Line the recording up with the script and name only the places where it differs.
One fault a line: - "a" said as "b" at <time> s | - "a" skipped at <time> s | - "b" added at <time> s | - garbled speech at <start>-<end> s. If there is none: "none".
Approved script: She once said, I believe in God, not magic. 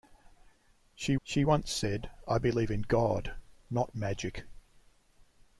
- "she" added at 1.2 s